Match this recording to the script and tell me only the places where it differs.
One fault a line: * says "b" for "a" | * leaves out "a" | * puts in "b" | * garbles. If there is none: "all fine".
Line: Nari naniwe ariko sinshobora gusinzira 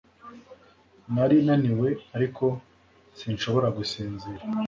all fine